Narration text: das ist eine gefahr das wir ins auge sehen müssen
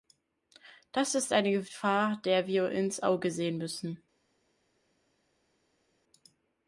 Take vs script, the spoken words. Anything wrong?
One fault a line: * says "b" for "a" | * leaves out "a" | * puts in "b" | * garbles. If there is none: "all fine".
* says "der" for "das"